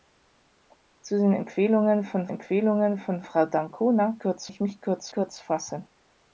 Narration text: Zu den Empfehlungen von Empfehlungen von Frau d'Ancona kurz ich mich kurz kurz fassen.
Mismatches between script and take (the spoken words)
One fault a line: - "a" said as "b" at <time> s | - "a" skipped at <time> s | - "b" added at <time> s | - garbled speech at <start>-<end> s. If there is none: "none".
none